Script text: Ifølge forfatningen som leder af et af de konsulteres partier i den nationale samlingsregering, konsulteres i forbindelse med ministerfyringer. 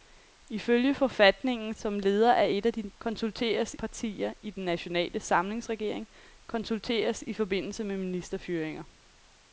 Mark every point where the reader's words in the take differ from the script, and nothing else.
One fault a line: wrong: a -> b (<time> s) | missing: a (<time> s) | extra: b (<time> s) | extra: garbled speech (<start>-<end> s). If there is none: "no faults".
no faults